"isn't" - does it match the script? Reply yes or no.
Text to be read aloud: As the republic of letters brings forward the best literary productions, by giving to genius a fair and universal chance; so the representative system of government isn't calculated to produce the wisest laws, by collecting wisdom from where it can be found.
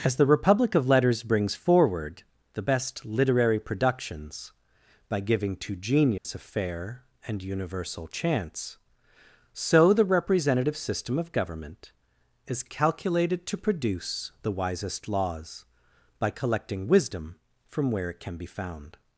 no